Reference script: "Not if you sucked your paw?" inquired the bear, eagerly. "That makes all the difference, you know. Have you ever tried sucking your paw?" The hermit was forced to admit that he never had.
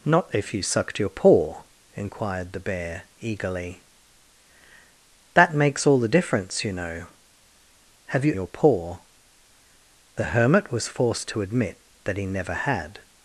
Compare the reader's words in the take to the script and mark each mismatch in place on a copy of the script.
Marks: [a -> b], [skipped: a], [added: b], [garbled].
"Not if you sucked your paw?" inquired the bear, eagerly. "That makes all the difference, you know. Have you [skipped: ever tried sucking] your paw?" The hermit was forced to admit that he never had.